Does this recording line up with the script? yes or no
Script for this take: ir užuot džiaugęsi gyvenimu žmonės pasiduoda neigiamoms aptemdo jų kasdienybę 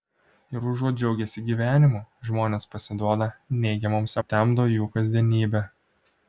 yes